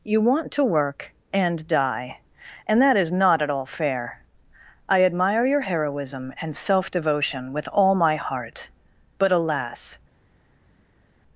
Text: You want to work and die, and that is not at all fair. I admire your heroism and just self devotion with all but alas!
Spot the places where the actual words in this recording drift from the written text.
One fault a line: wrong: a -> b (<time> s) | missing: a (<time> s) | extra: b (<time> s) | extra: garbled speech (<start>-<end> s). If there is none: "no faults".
missing: just (6.5 s)
extra: my heart (7.9 s)